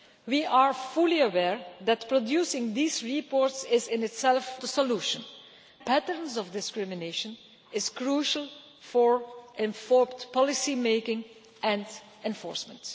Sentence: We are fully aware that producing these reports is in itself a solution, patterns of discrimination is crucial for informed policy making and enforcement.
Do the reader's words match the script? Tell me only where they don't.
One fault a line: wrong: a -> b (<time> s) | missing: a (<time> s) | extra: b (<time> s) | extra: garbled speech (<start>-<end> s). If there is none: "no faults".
no faults